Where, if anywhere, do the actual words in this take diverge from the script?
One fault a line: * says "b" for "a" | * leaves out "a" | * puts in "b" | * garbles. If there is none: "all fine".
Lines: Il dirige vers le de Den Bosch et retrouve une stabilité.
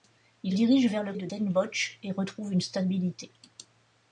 all fine